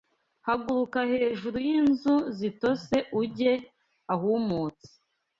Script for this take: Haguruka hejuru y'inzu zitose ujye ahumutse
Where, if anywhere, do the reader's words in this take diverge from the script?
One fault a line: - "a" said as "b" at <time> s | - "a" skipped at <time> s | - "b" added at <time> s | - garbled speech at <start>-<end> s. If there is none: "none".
none